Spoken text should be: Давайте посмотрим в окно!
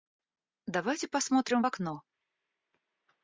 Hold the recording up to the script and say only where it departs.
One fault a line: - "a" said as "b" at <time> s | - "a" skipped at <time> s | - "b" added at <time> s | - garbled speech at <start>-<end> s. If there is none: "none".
none